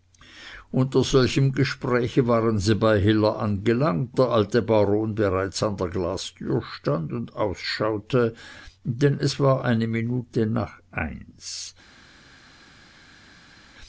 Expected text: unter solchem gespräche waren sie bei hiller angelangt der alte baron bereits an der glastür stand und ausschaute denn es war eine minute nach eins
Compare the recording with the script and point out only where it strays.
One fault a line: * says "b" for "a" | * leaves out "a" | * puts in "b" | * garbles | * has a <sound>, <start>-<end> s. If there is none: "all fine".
all fine